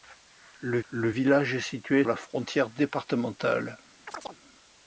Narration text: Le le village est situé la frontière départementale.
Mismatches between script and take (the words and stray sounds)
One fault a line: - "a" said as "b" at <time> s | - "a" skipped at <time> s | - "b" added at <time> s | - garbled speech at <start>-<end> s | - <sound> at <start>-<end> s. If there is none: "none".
- chirp at 4.1-4.4 s